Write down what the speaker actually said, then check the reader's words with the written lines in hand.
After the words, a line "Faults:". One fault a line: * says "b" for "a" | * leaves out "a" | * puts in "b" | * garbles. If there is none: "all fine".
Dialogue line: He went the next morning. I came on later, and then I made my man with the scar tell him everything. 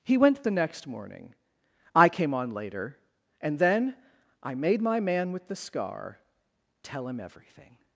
He went the next morning. I came on later, and then I made my man with the scar tell him everything.
Faults:
all fine